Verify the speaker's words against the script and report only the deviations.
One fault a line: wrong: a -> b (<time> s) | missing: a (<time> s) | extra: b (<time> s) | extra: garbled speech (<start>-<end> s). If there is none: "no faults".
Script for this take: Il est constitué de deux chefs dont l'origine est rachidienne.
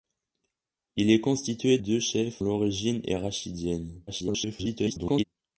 missing: de (1.8 s)
missing: dont (2.4 s)
extra: garbled speech (4.1-5.2 s)